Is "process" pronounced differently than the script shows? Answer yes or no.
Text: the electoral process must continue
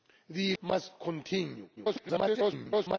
yes